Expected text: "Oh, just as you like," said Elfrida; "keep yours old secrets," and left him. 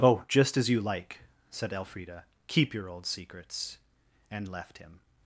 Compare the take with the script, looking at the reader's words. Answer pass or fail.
fail